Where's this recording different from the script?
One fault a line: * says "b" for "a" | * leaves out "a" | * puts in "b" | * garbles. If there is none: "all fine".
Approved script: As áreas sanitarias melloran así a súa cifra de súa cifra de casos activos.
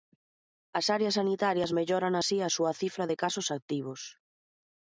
* leaves out "súa cifra de"